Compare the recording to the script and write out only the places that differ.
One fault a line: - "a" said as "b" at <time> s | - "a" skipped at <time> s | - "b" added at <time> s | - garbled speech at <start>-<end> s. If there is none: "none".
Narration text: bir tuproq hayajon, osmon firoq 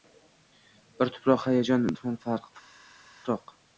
none